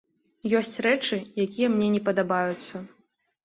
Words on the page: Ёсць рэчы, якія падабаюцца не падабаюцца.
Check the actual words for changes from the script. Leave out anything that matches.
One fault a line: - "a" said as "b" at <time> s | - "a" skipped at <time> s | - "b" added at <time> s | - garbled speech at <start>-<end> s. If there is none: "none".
- "падабаюцца" said as "мне" at 1.8 s